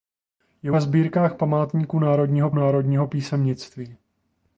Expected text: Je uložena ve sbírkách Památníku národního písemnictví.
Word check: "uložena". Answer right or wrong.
wrong